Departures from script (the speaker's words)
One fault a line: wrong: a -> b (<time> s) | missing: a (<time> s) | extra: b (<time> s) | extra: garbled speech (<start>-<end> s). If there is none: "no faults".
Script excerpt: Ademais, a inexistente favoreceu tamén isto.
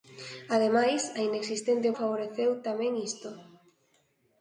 no faults